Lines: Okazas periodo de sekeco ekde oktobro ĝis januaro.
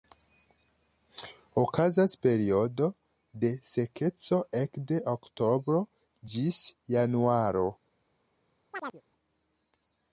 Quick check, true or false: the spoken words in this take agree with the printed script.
true